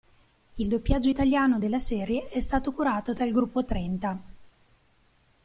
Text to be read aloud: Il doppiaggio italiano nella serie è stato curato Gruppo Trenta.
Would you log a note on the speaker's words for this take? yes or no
yes